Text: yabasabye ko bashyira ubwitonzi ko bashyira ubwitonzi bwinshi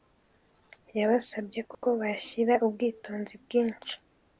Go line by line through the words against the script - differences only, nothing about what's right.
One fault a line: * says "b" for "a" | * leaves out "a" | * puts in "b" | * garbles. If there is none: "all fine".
* leaves out "ko bashyira ubwitonzi"